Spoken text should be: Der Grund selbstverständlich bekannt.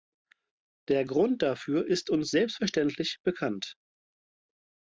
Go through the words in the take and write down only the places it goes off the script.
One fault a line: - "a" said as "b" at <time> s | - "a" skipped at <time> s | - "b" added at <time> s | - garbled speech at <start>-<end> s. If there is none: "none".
- "dafür ist uns" added at 1.4 s